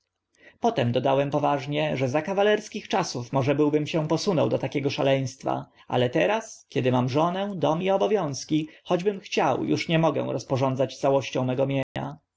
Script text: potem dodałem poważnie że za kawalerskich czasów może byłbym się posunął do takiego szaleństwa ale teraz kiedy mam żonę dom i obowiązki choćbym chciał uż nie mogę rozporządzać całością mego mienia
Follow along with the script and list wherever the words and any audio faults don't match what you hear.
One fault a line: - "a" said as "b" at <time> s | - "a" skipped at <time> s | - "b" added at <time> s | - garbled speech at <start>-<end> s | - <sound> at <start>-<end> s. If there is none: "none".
- dropout at 11.8-12.0 s